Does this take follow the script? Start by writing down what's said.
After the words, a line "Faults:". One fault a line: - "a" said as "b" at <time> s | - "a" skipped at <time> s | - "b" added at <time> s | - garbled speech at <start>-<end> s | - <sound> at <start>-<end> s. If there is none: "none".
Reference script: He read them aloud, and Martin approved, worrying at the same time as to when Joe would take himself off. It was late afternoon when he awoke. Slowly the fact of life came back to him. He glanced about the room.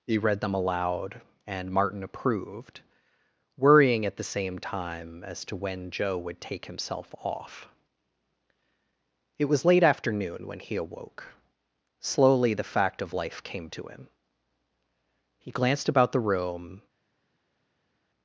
He read them aloud, and Martin approved, worrying at the same time as to when Joe would take himself off. It was late afternoon when he awoke. Slowly the fact of life came to him. He glanced about the room.
Faults:
- "back" skipped at 13.7 s